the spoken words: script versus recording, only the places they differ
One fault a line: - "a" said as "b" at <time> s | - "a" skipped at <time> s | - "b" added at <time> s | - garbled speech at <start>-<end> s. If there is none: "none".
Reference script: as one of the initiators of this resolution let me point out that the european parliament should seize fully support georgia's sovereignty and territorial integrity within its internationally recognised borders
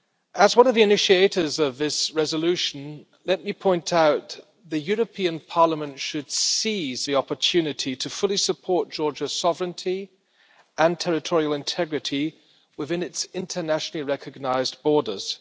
- "the opportunity to" added at 7.0 s